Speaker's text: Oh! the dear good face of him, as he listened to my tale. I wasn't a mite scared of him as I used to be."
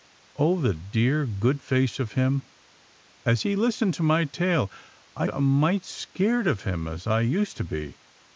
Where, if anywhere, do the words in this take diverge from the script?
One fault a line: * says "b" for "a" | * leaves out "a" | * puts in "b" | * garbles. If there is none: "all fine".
* leaves out "wasn't"